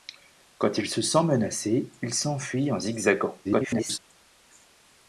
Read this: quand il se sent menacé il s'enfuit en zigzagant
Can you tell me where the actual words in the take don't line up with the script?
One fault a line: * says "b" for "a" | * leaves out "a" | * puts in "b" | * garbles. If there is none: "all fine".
* garbles